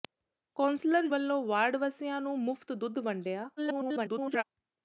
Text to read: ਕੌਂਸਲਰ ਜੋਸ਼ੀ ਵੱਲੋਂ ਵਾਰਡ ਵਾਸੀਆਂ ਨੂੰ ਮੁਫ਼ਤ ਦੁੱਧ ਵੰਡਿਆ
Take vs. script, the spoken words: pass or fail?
fail